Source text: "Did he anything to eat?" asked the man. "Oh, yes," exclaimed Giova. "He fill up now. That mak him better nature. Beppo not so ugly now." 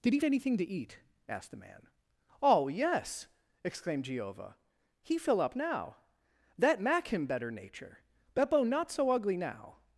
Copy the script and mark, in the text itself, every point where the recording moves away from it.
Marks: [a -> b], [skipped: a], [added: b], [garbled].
"Did he anything to eat?" asked the man. "Oh, yes," exclaimed Giova. "He fill up now. That mak him better nature. Beppo not so ugly now."